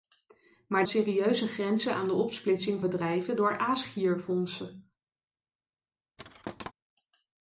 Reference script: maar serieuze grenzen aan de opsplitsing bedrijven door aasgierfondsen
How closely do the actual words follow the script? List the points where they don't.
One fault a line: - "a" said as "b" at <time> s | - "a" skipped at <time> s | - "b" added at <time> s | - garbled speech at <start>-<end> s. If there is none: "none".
none